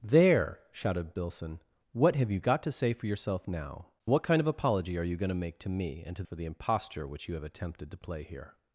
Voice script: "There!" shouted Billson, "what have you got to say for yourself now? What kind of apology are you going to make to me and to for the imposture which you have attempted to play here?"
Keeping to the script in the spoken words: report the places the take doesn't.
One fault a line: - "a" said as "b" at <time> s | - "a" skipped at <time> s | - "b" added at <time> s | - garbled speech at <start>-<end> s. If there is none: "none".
none